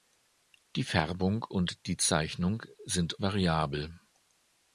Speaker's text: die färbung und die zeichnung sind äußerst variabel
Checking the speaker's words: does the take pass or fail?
fail